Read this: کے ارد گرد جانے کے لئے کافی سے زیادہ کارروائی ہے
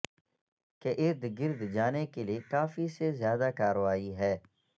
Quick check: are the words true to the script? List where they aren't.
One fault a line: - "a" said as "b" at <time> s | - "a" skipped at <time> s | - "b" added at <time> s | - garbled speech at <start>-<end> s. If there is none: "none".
none